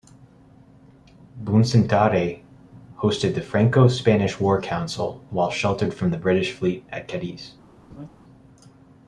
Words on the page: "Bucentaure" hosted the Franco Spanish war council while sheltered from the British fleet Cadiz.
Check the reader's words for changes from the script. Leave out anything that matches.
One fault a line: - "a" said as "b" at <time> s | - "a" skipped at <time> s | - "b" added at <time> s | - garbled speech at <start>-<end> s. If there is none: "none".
- "at" added at 6.9 s